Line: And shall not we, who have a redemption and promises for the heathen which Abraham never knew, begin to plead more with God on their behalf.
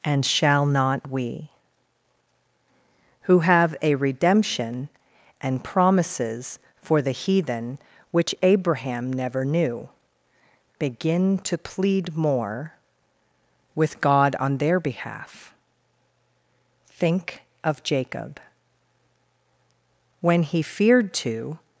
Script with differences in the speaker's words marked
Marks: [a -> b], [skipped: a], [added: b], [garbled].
And shall not we, who have a redemption and promises for the heathen which Abraham never knew, begin to plead more with God on their behalf. [added: Think of Jacob when he feared to]